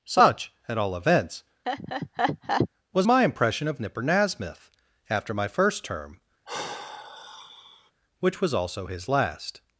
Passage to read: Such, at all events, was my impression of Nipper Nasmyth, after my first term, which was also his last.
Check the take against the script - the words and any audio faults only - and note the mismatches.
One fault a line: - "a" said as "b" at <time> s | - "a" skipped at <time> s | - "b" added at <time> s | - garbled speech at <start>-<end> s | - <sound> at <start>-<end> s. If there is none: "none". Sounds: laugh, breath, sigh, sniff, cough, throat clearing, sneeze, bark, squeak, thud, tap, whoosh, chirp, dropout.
- laugh at 1.6-2.7 s
- sigh at 6.5-7.9 s